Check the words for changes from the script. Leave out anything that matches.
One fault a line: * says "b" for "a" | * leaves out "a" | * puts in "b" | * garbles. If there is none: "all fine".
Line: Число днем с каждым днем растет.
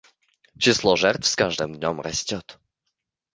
* says "жертв" for "днем"